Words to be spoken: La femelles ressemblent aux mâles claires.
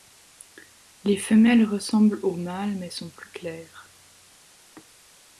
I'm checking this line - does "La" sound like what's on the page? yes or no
no